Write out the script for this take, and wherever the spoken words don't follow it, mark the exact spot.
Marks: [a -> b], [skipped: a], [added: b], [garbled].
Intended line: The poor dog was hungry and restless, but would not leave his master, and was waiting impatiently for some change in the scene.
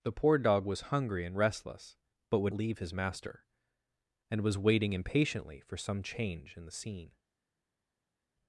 The poor dog was hungry and restless, but would [skipped: not] leave his master, and was waiting impatiently for some change in the scene.